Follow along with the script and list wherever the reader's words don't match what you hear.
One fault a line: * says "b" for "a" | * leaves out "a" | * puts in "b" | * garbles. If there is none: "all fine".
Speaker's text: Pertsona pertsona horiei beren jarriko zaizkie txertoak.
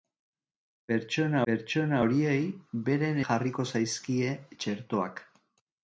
all fine